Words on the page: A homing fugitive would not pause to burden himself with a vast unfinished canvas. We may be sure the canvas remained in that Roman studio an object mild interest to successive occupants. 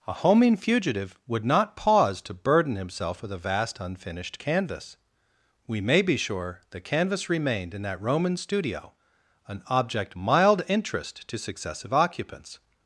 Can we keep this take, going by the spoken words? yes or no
yes